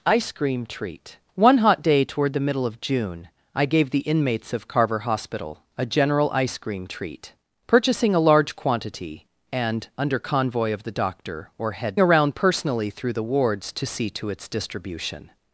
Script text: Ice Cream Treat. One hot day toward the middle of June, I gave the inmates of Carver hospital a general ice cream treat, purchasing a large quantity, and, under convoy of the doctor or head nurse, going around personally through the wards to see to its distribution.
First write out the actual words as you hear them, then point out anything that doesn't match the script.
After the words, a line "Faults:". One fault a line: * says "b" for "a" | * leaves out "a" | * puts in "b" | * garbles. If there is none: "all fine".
Ice Cream Treat. One hot day toward the middle of June, I gave the inmates of Carver hospital a general ice cream treat, purchasing a large quantity, and, under convoy of the doctor or head around personally through the wards to see to its distribution.
Faults:
* leaves out "nurse going"